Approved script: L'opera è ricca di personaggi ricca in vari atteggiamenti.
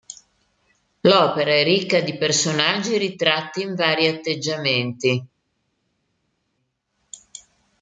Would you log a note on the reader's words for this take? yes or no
yes